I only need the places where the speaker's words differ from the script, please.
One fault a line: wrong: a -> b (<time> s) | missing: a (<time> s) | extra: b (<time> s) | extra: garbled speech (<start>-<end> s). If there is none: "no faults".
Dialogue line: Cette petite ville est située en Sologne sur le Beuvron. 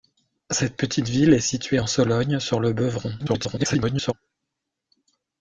extra: garbled speech (3.2-4.1 s)